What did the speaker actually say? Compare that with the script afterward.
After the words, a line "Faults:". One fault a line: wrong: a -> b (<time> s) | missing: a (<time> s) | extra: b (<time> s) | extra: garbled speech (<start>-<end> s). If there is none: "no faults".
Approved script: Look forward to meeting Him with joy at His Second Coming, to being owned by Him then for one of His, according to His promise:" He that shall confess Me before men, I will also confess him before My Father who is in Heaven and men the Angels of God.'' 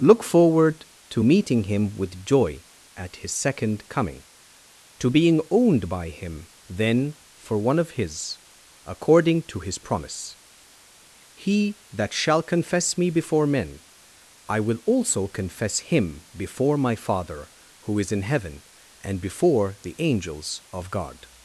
Look forward to meeting Him with joy at His Second Coming, to being owned by Him then for one of His, according to His promise:" He that shall confess Me before men, I will also confess him before My Father who is in Heaven and before the Angels of God.''
Faults:
wrong: men -> before (19.2 s)